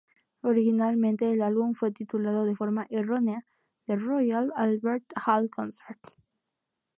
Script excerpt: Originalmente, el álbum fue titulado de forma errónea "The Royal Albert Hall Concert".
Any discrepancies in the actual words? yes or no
no